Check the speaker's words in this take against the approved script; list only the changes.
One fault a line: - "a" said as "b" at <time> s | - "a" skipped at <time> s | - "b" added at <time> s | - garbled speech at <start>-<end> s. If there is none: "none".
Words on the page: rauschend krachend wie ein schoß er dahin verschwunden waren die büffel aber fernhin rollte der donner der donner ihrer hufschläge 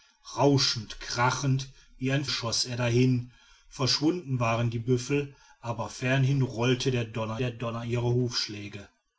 none